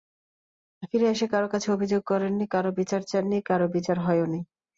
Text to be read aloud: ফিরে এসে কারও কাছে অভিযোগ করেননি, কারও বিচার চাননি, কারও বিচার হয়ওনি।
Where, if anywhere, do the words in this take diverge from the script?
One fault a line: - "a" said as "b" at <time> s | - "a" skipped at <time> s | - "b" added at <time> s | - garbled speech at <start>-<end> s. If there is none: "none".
none